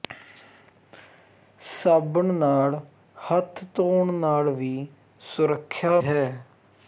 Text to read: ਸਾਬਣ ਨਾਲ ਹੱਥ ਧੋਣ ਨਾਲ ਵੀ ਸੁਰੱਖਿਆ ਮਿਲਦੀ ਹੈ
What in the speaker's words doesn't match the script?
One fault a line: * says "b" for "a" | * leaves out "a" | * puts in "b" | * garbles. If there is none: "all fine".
* leaves out "ਮਿਲਦੀ"